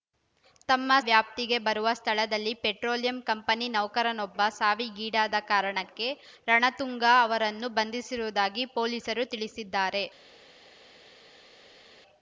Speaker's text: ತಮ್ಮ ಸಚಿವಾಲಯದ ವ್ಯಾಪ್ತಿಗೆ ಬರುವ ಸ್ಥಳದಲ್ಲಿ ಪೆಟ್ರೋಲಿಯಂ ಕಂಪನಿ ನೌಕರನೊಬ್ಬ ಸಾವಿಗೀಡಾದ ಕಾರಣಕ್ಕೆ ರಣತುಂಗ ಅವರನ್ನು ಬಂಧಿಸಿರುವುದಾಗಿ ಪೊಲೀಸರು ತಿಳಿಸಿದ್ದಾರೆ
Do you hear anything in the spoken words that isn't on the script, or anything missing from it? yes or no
yes